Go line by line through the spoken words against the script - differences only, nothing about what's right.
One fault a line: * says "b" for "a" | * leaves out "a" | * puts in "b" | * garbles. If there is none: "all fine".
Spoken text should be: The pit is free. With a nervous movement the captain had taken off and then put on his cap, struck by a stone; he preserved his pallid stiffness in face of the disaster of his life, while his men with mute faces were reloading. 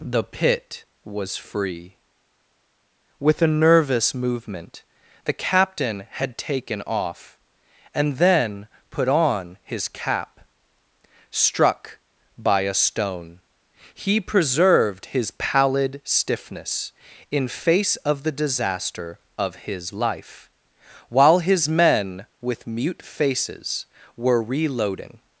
* says "was" for "is"